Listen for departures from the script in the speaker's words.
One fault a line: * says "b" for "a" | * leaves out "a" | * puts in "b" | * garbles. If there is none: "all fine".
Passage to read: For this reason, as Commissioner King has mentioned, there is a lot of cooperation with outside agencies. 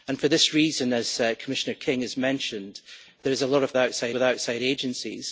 * says "outside" for "cooperation"